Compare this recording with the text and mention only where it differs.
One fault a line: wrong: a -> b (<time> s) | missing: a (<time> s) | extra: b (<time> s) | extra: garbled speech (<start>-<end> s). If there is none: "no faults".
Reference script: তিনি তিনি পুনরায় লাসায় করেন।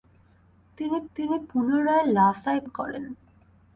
no faults